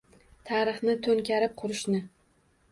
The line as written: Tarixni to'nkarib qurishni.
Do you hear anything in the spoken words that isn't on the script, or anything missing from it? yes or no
no